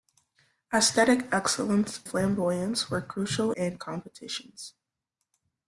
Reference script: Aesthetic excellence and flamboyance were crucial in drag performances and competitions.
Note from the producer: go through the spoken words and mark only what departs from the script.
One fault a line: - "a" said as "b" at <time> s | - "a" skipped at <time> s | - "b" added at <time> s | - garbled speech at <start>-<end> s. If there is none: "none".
- "and" skipped at 2.0 s
- "in drag performances" skipped at 3.5 s